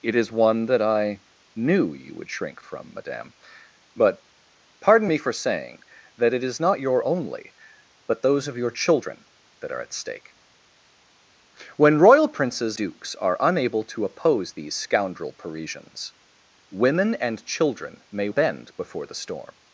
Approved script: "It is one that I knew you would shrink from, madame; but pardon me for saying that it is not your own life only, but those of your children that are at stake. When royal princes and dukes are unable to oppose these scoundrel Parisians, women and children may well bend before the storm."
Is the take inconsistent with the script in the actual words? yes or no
yes